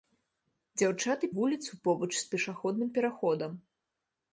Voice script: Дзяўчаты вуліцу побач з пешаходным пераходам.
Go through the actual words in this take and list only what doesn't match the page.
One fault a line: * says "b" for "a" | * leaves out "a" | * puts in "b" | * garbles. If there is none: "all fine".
all fine